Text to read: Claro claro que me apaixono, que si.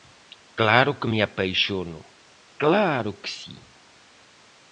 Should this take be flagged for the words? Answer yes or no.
yes